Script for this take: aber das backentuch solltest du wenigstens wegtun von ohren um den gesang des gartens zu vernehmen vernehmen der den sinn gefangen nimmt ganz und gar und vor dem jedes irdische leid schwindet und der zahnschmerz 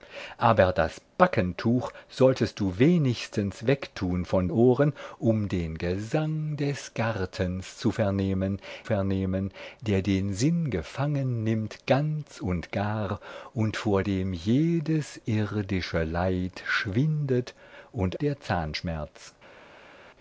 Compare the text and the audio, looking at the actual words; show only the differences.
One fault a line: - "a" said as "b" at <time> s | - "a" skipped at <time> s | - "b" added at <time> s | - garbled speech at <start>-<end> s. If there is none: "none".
none